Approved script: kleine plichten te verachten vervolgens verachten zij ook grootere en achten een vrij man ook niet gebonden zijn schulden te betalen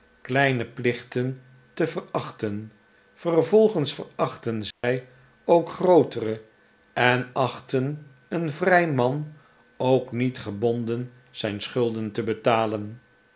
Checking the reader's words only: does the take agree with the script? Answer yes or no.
yes